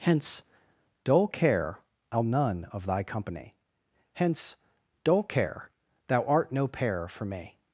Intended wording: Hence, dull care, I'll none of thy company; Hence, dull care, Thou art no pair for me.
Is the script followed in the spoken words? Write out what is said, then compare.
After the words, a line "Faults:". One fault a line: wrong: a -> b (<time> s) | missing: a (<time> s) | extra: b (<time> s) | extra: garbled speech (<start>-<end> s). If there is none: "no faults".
Hence, dull care, I'll none of thy company; Hence, dull care, Thou art no pair for me.
Faults:
no faults